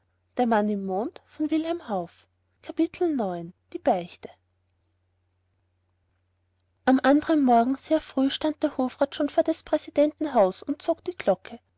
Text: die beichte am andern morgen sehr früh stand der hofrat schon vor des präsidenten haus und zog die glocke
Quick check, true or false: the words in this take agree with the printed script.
true